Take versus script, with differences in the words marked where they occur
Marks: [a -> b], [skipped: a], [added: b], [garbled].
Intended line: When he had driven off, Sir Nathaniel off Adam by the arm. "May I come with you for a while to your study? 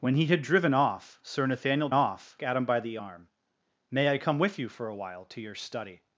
When he had driven off, Sir Nathaniel off Adam by the arm. "May I come with you for a while to your study?